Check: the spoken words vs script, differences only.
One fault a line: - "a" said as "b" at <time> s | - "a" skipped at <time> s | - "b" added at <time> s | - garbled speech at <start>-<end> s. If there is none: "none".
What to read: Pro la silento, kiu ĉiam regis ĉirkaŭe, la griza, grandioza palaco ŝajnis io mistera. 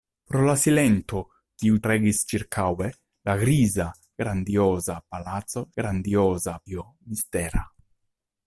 - "ĉiam" skipped at 1.8 s
- "ŝajnis" said as "grandioza" at 5.8 s